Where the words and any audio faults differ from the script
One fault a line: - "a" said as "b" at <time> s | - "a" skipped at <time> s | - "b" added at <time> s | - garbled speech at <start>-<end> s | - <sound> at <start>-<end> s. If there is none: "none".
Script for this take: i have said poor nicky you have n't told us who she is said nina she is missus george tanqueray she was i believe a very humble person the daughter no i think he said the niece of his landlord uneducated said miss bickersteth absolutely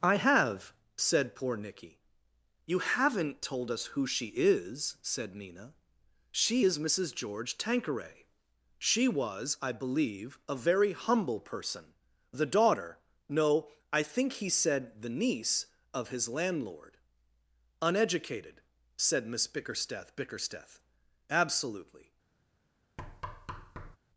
- "bickersteth" added at 20.1 s
- thud at 23.0-24.0 s